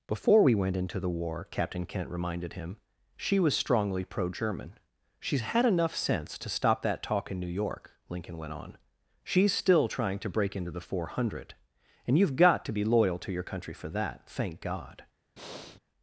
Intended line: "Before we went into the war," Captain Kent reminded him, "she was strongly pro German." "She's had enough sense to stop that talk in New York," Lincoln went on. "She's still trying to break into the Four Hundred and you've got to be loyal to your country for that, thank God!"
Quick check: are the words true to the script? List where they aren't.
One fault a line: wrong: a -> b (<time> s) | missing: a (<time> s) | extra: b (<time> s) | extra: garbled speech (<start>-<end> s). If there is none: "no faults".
no faults